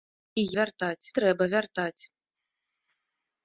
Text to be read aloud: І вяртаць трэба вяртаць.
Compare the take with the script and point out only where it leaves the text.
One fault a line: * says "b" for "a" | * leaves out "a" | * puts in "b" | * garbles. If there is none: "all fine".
all fine